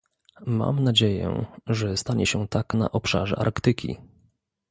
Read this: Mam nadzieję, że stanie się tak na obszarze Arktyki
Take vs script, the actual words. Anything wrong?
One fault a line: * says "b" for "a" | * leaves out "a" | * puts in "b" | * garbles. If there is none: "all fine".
all fine